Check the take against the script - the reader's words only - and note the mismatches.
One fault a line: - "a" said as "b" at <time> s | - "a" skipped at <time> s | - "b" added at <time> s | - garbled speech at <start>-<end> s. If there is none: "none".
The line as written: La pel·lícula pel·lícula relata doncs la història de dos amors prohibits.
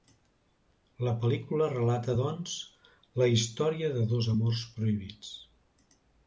- "pel·lícula" skipped at 1.7 s